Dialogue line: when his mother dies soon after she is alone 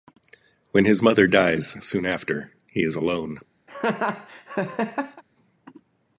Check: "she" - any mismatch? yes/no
yes